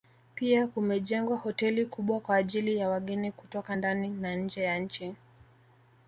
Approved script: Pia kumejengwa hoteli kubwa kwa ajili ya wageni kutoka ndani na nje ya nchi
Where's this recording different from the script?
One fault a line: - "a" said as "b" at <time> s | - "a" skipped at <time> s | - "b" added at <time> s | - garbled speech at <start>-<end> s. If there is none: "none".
none